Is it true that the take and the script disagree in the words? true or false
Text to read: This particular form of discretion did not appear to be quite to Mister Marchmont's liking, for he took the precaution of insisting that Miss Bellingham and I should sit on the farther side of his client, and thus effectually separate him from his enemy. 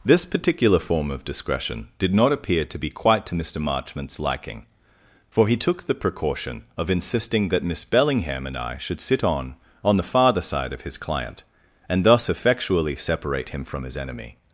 true